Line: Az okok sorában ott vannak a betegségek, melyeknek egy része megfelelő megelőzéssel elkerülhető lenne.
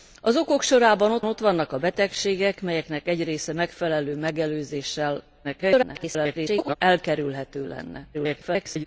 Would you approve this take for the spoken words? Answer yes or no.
no